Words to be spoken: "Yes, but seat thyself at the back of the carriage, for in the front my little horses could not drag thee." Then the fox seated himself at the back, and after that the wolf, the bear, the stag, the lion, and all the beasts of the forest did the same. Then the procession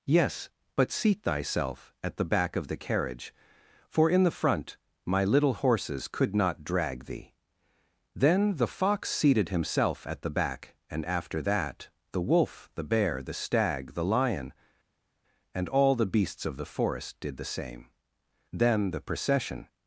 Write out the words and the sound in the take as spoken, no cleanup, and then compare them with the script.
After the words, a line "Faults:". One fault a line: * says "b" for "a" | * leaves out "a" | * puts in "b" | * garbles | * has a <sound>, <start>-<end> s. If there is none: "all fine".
"Yes, but seat thyself at the back of the carriage, for in the front my little horses could not drag thee." Then the fox seated himself at the back, and after that the wolf, the bear, the stag, the lion, and all the beasts of the forest did the same. Then the procession
Faults:
all fine